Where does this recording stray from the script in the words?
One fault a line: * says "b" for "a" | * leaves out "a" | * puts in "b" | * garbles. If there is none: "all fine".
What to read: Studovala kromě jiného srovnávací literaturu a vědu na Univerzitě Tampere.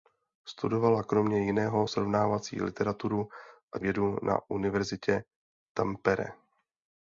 all fine